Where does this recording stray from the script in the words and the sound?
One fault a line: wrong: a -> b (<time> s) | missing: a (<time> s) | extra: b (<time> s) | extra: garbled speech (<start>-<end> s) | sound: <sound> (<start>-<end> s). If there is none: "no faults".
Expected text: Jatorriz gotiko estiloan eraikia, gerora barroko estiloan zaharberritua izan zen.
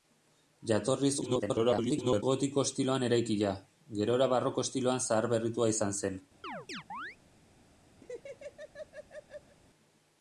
extra: garbled speech (1.2-2.2 s)
sound: chirp (6.4-7.2 s)
sound: laugh (8.0-9.6 s)